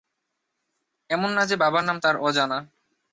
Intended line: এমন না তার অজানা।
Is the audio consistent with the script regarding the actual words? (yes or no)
no